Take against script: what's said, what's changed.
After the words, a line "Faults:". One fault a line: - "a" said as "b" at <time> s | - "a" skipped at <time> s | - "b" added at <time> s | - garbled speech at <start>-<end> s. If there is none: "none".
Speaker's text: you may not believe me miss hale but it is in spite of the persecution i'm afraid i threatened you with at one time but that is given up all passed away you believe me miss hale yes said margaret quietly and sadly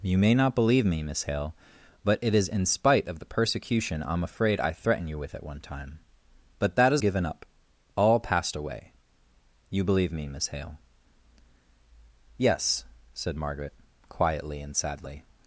you may not believe me miss hale but it is in spite of the persecution i'm afraid i threatened you with at one time but that is given up all passed away you believe me miss hale yes said margaret quietly and sadly
Faults:
none